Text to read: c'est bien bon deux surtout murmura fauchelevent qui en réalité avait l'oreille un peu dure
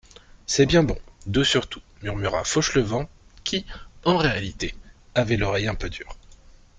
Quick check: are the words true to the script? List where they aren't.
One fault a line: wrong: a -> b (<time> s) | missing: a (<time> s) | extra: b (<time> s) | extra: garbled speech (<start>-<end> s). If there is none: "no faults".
no faults